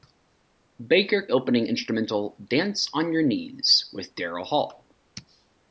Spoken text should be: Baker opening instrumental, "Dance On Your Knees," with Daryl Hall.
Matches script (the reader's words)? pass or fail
pass